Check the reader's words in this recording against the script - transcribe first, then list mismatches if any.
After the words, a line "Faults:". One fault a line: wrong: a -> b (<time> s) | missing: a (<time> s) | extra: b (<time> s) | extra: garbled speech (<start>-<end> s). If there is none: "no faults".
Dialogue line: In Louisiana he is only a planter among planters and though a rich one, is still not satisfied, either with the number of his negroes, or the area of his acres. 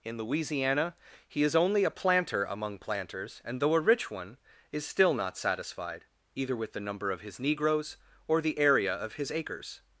In Louisiana he is only a planter among planters and though a rich one, is still not satisfied, either with the number of his negroes, or the area of his acres.
Faults:
no faults